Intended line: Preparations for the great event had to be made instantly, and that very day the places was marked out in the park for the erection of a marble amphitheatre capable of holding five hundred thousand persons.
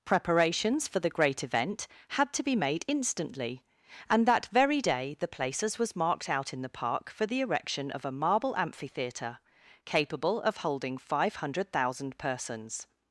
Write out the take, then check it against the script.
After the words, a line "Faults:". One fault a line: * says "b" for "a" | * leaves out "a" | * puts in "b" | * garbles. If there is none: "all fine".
Preparations for the great event had to be made instantly, and that very day the places was marked out in the park for the erection of a marble amphitheatre capable of holding five hundred thousand persons.
Faults:
all fine